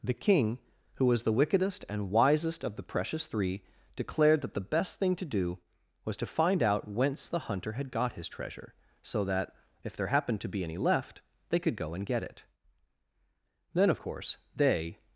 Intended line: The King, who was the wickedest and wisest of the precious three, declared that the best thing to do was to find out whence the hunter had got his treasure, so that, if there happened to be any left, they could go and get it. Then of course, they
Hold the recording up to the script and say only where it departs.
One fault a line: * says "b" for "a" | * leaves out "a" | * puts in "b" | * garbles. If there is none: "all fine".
all fine